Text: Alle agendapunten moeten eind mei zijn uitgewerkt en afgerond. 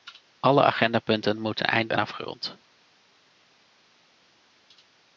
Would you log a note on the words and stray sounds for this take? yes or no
yes